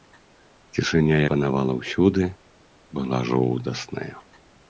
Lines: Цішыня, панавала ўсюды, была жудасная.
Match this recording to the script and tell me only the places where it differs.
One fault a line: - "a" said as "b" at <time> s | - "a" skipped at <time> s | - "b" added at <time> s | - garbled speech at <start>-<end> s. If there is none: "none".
none